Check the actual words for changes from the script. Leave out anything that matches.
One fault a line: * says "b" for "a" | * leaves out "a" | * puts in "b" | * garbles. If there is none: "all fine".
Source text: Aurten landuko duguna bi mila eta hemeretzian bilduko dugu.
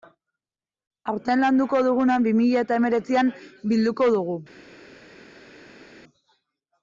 all fine